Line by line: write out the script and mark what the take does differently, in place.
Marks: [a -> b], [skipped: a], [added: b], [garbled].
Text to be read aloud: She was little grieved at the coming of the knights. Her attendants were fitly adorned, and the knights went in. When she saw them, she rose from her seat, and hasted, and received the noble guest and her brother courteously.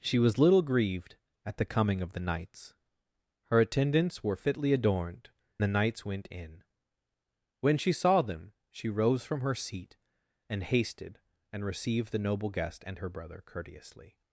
She was little grieved at the coming of the knights. Her attendants were fitly adorned, [skipped: and] the knights went in. When she saw them, she rose from her seat, and hasted, and received the noble guest and her brother courteously.